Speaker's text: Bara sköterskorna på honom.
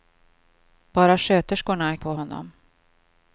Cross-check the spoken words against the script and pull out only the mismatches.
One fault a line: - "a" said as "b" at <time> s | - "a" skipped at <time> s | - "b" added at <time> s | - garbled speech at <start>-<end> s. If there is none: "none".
none